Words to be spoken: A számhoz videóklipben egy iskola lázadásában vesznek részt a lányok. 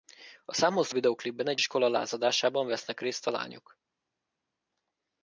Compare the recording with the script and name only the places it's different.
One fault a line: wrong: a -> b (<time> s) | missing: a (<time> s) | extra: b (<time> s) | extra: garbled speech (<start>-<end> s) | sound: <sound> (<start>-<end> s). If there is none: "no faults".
no faults